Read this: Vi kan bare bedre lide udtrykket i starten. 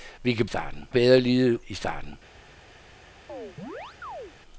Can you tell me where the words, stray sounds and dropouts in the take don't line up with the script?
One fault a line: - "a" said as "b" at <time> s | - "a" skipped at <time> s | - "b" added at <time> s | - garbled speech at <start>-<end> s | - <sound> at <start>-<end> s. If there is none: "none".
- "bare" said as "starten" at 0.4 s
- "udtrykket" skipped at 1.7 s
- chirp at 3.3-4.3 s